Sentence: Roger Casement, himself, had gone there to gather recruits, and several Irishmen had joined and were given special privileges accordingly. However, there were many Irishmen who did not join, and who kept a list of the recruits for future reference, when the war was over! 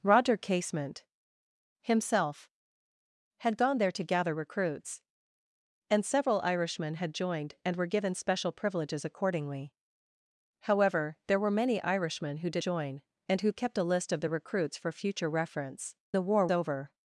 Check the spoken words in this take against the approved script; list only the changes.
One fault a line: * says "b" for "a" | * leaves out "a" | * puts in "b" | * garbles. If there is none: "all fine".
* leaves out "not"
* leaves out "when"
* leaves out "was"